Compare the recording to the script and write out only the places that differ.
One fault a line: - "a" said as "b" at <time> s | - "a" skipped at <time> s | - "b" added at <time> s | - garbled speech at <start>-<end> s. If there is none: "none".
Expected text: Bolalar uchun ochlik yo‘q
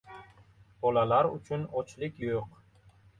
none